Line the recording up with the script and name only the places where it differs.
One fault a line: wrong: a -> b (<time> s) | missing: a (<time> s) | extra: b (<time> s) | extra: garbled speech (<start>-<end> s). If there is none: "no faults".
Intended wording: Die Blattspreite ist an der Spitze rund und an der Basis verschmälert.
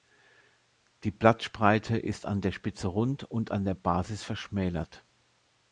no faults